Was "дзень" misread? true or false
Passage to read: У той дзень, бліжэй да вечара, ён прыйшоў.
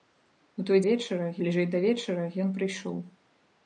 true